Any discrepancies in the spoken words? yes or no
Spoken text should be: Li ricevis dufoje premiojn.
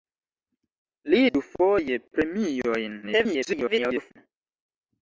yes